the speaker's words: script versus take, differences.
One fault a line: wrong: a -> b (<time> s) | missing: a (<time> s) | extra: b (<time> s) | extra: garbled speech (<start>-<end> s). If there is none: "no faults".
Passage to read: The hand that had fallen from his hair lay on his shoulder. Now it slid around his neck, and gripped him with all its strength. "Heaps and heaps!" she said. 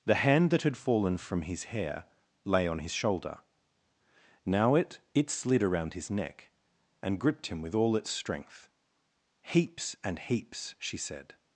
extra: it (5.1 s)